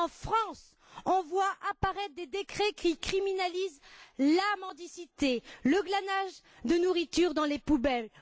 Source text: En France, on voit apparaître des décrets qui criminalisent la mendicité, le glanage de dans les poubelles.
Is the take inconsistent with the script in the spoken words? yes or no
yes